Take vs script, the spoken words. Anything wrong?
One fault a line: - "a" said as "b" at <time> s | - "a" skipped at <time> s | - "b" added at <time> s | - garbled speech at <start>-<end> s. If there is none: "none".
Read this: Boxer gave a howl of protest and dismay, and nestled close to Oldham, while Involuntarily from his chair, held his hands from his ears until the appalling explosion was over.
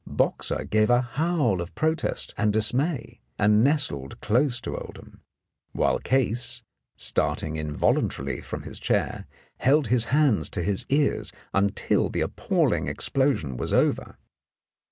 - "Case starting" added at 6.0 s
- "from" said as "to" at 10.5 s